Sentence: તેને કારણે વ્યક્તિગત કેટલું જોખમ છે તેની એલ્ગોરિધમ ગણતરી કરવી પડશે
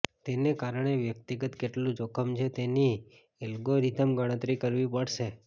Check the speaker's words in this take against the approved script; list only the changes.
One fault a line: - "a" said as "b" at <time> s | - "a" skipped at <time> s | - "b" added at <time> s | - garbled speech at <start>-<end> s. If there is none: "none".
none